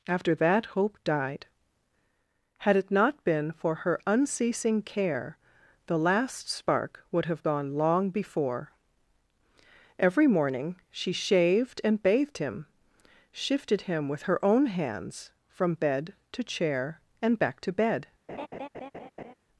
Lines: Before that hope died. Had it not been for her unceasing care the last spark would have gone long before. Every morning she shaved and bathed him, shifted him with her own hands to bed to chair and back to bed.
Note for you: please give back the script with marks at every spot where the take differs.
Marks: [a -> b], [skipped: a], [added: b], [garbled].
[Before -> After] that hope died. Had it not been for her unceasing care the last spark would have gone long before. Every morning she shaved and bathed him, shifted him with her own hands [to -> from] bed to chair and back to bed.